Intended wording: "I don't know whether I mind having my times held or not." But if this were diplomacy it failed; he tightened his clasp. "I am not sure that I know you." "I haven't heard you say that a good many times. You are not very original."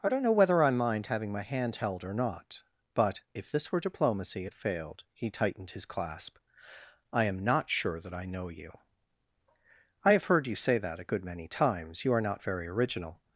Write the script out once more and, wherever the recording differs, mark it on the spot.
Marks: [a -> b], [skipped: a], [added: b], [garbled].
"I don't know whether I mind having my [times -> hand] held or not." But if this were diplomacy it failed; he tightened his clasp. "I am not sure that I know you." "I [haven't -> have] heard you say that a good many times. You are not very original."